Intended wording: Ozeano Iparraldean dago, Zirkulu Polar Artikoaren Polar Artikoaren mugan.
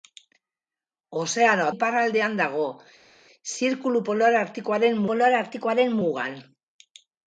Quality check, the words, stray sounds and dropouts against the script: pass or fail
pass